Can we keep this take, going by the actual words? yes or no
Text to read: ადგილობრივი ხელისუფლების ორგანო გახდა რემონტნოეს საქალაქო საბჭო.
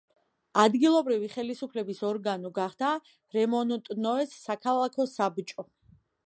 yes